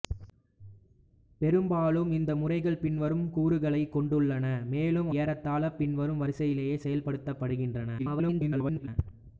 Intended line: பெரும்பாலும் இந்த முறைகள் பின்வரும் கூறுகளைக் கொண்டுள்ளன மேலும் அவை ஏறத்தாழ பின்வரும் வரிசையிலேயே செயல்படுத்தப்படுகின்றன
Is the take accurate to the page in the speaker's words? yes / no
no